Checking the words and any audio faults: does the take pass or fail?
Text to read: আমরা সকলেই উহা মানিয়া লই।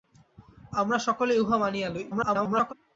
fail